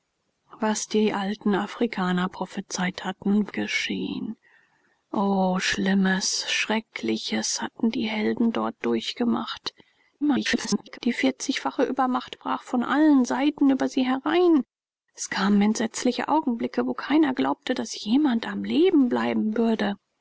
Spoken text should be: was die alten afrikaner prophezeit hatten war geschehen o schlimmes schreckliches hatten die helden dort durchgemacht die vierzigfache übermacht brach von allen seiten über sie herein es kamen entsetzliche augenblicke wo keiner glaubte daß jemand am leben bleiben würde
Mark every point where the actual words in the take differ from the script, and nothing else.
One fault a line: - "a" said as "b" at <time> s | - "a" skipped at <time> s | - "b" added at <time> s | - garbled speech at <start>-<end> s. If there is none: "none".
- "war" skipped at 3.5 s
- garbled speech at 10.2-11.0 s